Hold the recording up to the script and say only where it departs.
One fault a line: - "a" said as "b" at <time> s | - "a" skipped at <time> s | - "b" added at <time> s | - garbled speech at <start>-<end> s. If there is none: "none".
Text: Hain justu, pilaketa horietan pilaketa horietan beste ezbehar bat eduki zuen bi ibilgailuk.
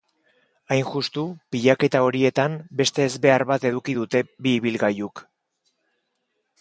- "pilaketa horietan" skipped at 2.6 s
- "zuen" said as "dute" at 4.0 s